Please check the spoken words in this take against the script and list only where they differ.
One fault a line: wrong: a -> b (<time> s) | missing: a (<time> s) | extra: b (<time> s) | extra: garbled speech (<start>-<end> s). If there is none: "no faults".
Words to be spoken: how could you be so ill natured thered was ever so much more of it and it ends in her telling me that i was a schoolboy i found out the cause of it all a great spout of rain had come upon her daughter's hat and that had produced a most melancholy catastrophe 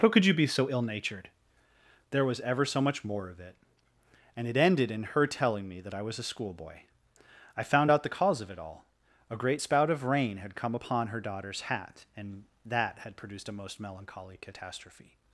wrong: thered -> there (2.1 s)
wrong: ends -> ended (4.6 s)